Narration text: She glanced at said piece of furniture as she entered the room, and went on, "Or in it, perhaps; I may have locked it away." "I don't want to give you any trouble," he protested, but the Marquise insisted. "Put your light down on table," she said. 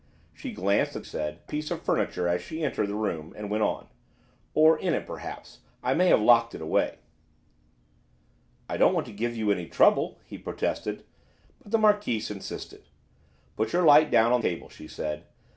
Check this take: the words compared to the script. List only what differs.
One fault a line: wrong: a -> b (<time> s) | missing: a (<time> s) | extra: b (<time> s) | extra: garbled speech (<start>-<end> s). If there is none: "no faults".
no faults